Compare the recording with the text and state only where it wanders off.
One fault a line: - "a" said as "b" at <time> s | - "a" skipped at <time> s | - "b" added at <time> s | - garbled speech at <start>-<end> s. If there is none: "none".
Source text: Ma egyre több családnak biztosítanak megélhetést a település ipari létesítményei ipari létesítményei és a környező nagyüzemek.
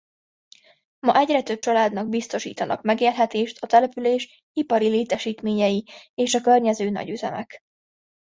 - "ipari létesítményei" skipped at 5.9 s